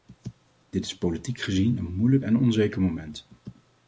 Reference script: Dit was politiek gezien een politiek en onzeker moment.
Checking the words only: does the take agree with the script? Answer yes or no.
no